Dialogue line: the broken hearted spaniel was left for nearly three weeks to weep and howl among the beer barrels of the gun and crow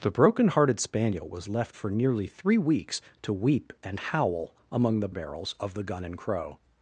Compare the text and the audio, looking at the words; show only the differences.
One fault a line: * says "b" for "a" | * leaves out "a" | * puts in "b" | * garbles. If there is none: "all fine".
* leaves out "beer"